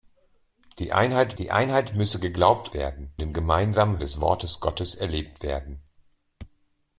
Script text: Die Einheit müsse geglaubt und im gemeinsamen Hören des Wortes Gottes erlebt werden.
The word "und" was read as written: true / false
false